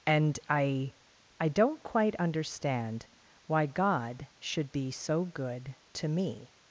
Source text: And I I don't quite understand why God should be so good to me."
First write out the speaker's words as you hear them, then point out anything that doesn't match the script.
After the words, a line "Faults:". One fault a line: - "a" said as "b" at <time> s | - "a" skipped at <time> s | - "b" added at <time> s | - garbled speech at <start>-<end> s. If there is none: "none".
And I I don't quite understand why God should be so good to me."
Faults:
none